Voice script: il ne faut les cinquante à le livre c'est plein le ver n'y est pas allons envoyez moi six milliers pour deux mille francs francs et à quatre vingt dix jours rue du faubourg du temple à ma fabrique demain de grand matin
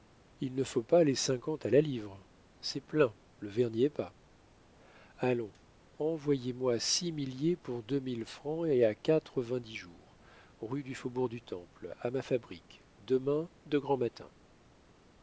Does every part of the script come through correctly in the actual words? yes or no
no